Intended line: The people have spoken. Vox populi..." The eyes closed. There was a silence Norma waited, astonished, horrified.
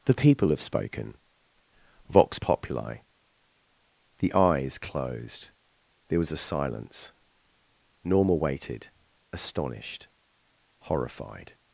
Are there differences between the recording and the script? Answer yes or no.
no